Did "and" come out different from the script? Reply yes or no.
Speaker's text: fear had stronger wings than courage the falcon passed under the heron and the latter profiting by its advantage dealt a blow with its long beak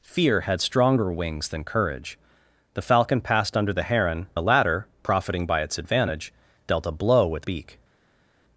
yes